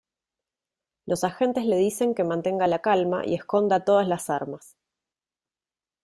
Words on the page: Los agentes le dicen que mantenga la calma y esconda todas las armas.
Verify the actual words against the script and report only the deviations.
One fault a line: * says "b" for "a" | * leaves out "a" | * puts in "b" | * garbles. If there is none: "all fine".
all fine